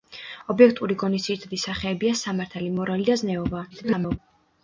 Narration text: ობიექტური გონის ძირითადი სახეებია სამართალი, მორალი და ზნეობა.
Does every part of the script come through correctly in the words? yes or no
no